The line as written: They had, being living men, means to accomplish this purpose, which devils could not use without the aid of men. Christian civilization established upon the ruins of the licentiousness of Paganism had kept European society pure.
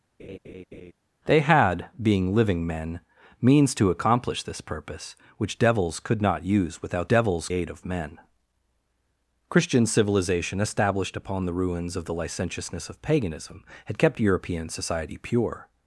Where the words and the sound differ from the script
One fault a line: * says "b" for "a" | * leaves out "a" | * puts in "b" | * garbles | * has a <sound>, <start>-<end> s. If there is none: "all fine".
* has a laugh, 0.2-0.9 s
* says "devils" for "the"